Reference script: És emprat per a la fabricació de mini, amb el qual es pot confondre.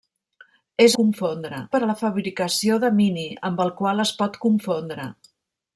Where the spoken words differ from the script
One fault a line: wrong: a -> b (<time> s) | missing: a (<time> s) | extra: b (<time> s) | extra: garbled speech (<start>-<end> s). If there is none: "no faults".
wrong: emprat -> confondre (1.0 s)